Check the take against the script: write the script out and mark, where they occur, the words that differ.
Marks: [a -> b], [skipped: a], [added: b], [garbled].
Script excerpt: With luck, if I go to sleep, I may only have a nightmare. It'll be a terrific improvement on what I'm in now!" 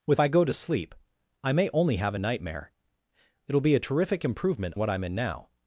With [skipped: luck, if] I go to sleep, I may only have a nightmare. It'll be a terrific improvement [skipped: on] what I'm in now!"